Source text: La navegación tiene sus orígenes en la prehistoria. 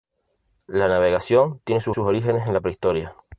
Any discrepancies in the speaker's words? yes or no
yes